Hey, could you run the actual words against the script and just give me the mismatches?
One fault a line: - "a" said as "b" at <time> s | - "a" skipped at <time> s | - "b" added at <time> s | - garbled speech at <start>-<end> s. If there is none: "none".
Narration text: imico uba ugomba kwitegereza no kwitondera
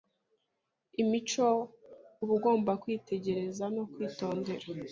none